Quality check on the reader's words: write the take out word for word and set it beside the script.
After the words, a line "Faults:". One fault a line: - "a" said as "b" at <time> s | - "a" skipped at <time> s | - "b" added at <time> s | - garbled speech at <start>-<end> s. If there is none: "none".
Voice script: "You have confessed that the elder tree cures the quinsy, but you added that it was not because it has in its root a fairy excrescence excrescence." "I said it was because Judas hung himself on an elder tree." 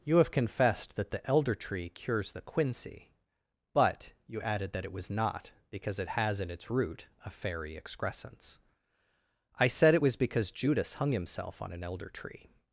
"You have confessed that the elder tree cures the quinsy, but you added that it was not because it has in its root a fairy excrescence." "I said it was because Judas hung himself on an elder tree."
Faults:
- "excrescence" skipped at 8.6 s